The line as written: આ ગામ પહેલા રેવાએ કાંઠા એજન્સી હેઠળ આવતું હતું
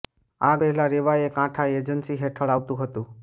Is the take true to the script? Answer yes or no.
no